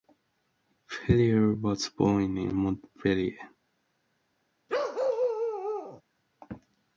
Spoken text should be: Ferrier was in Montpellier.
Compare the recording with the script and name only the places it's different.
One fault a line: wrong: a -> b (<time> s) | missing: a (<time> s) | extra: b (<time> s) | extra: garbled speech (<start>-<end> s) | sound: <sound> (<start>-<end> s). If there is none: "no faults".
extra: born (1.9 s)
sound: bark (4.7-6.0 s)